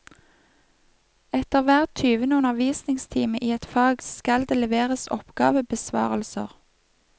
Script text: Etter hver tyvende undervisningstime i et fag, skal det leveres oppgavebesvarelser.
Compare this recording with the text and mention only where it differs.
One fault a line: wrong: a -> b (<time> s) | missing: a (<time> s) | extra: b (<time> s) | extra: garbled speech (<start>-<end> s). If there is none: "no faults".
no faults